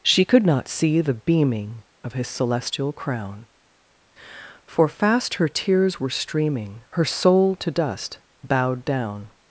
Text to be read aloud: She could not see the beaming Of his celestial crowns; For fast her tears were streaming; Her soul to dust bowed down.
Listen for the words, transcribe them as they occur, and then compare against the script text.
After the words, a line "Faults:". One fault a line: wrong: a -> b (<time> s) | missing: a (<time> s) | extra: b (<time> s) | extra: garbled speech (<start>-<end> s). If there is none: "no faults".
She could not see the beaming Of his celestial crown; For fast her tears were streaming; Her soul to dust bowed down.
Faults:
wrong: crowns -> crown (2.9 s)